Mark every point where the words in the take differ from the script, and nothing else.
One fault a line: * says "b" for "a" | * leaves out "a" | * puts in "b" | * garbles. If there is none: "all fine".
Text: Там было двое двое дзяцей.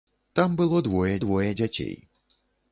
all fine